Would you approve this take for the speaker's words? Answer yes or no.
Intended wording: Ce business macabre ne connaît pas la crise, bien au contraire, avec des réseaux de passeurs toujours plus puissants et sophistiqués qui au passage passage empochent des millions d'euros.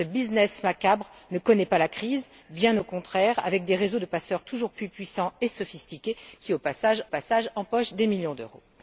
yes